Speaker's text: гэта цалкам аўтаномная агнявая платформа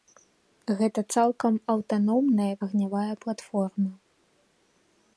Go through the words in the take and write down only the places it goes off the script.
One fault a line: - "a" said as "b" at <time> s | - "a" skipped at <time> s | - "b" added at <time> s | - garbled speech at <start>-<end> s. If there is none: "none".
none